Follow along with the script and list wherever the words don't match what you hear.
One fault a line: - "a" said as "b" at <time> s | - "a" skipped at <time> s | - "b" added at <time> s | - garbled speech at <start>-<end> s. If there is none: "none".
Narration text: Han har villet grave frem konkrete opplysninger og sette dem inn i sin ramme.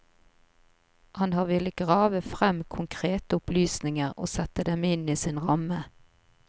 none